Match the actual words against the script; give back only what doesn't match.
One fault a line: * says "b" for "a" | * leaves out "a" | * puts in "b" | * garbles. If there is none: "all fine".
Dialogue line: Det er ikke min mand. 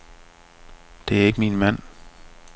all fine